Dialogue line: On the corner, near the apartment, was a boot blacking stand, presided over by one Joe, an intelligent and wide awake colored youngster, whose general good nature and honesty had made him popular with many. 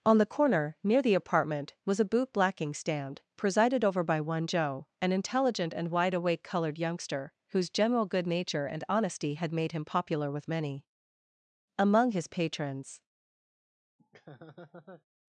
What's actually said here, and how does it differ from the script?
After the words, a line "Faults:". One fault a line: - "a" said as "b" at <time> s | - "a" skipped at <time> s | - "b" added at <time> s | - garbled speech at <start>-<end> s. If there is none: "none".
On the corner, near the apartment, was a boot blacking stand, presided over by one Joe, an intelligent and wide awake colored youngster, whose general good nature and honesty had made him popular with many. Among his patrons
Faults:
- "Among his patrons" added at 11.8 s